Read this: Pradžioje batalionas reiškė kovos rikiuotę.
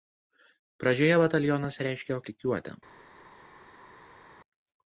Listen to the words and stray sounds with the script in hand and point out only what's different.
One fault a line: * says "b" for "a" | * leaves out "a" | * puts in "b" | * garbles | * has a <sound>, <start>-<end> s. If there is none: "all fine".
* leaves out "kovos"